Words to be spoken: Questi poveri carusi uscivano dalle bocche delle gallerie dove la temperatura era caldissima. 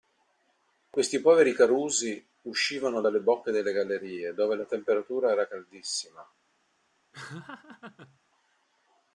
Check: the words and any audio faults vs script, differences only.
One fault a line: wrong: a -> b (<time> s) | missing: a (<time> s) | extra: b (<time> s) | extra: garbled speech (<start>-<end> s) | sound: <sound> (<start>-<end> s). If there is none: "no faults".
sound: laugh (7.1-8.2 s)